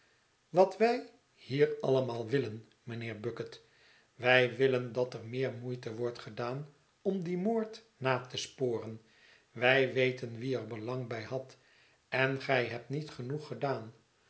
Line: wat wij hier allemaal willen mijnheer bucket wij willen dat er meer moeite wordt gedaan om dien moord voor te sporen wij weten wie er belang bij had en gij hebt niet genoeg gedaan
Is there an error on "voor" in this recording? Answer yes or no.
yes